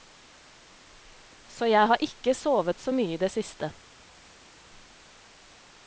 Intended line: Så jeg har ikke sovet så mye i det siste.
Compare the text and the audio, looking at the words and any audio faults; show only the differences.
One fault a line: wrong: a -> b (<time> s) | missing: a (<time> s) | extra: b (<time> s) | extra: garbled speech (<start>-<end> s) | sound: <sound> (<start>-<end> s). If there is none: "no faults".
no faults